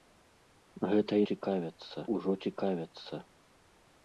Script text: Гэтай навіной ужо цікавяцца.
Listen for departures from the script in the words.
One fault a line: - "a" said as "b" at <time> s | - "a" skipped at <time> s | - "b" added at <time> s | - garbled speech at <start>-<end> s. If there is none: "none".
- "навіной" said as "цікавяцца" at 1.3 s